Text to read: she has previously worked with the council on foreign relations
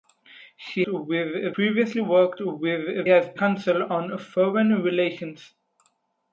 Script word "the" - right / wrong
wrong